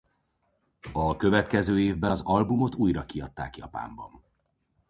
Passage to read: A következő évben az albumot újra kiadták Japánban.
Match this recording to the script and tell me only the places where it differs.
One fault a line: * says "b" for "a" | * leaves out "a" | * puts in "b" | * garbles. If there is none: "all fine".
all fine